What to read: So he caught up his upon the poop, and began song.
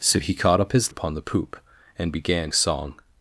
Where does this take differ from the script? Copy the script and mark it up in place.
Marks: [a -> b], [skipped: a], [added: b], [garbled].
So he caught up his upon the poop, and began song.